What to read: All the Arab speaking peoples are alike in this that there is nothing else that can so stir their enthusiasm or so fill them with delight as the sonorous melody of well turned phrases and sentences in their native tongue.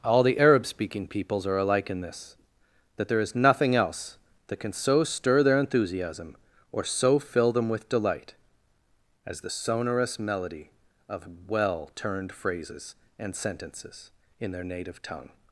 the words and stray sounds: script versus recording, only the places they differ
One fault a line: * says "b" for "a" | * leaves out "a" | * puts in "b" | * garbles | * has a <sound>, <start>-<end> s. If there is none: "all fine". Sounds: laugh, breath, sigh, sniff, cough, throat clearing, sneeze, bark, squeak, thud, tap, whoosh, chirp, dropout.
all fine